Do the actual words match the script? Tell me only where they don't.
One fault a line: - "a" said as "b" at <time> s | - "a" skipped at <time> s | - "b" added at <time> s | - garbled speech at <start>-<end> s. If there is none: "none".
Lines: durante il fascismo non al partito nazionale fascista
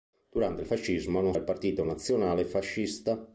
none